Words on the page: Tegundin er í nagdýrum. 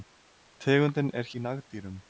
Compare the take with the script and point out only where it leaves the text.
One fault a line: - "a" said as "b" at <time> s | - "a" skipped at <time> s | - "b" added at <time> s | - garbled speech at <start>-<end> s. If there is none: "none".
none